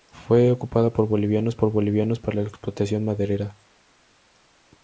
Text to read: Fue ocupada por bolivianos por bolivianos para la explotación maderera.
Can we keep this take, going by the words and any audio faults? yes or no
yes